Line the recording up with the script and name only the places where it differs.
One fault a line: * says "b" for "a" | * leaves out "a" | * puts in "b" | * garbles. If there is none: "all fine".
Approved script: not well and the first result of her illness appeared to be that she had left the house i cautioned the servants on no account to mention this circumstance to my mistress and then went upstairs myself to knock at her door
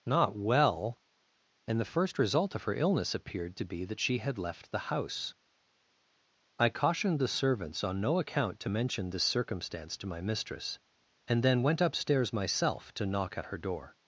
all fine